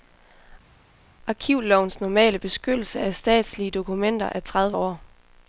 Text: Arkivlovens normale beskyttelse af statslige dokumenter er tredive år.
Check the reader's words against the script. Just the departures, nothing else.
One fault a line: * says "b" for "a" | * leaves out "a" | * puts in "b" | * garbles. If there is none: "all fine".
all fine